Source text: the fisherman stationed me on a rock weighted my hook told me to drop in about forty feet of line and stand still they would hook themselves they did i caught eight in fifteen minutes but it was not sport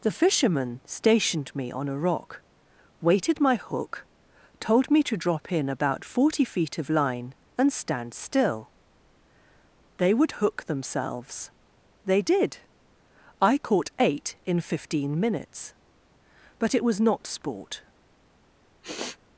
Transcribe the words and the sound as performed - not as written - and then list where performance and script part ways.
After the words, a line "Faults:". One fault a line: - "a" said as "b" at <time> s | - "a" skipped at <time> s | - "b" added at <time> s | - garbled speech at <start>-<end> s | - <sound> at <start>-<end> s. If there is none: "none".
the fisherman stationed me on a rock weighted my hook told me to drop in about forty feet of line and stand still they would hook themselves they did i caught eight in fifteen minutes but it was not sport
Faults:
- sniff at 18.8-19.2 s